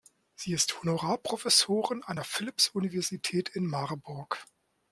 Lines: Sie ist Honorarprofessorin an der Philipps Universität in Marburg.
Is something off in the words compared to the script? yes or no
no